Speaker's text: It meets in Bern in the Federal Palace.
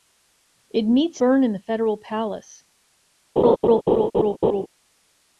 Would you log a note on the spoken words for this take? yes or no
yes